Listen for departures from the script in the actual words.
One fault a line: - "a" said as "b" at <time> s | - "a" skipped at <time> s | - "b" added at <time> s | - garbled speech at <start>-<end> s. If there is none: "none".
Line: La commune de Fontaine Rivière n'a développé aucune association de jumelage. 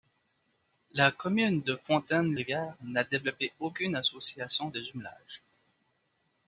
none